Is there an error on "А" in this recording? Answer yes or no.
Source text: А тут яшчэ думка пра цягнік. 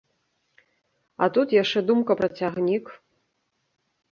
no